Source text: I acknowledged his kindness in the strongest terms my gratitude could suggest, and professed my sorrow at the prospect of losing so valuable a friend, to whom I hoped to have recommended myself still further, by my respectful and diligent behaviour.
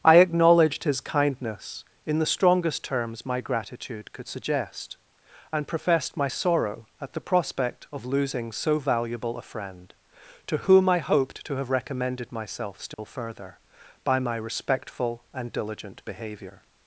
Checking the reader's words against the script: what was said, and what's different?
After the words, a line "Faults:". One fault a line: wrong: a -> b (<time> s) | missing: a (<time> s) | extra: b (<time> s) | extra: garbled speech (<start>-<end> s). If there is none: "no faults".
I acknowledged his kindness in the strongest terms my gratitude could suggest, and professed my sorrow at the prospect of losing so valuable a friend, to whom I hoped to have recommended myself still further, by my respectful and diligent behaviour.
Faults:
no faults